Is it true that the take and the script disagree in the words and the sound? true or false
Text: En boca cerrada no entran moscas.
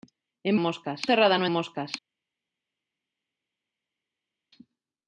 true